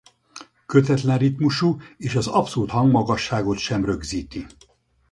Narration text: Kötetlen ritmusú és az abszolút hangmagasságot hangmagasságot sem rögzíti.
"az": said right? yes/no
yes